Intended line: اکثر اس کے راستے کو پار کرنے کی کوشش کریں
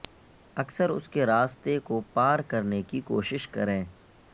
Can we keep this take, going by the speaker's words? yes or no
yes